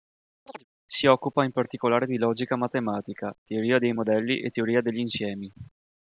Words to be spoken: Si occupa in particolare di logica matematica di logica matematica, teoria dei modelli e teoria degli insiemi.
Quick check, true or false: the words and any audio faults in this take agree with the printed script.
false